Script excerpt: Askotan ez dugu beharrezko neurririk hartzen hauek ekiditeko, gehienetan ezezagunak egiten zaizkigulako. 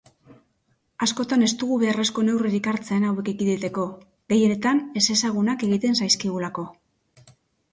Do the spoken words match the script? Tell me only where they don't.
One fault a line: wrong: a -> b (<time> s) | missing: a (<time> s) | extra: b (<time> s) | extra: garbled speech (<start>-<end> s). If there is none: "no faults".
no faults